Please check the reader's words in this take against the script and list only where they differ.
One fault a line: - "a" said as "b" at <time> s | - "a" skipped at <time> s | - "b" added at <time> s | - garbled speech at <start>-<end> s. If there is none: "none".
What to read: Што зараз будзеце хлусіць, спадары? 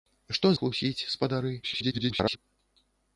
- "зараз будзеце" skipped at 0.5 s
- garbled speech at 1.6-2.4 s